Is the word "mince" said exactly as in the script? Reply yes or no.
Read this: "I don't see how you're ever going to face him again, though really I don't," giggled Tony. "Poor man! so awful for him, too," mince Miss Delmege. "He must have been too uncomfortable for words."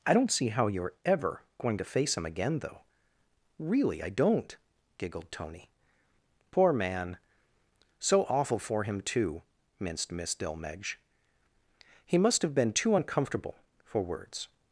no